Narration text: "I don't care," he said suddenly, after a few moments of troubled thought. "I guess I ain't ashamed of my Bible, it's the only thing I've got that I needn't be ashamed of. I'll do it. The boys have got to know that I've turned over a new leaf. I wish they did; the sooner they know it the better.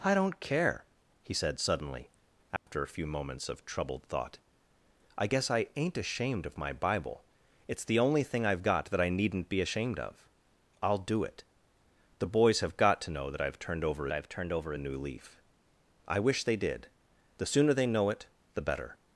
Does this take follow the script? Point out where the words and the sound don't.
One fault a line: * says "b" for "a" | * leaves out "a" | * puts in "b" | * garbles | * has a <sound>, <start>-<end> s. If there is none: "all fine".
* has a dropout, 2.6-2.7 s
* puts in "I've turned over"